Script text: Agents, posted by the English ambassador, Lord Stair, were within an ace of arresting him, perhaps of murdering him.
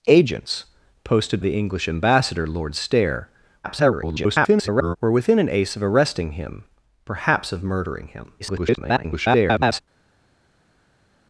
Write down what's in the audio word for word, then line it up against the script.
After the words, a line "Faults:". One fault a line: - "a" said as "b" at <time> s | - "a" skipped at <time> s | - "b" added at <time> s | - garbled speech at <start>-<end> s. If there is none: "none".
Agents, posted the English ambassador, Lord Stair, [garbled] were within an ace of arresting him, perhaps of murdering him. [garbled]
Faults:
- "by" skipped at 1.4 s
- garbled speech at 3.6-5.0 s
- garbled speech at 8.4-9.8 s